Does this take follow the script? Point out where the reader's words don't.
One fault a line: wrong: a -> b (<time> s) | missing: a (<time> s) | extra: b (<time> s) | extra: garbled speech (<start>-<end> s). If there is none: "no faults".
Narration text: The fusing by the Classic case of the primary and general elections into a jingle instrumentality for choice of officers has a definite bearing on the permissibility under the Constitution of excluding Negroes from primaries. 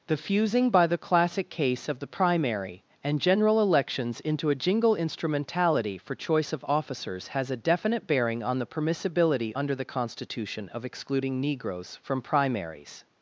no faults